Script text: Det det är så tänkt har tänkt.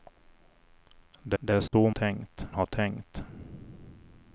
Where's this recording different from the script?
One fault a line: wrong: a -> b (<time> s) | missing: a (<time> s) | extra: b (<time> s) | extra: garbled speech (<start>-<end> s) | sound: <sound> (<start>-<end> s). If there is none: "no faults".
sound: dropout (1.7-1.7 s)